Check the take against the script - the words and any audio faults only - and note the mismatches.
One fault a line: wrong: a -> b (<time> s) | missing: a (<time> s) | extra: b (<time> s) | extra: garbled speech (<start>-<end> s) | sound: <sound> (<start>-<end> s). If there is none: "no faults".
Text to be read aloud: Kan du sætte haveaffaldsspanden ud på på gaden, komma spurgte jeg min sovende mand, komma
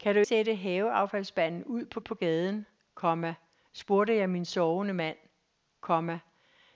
no faults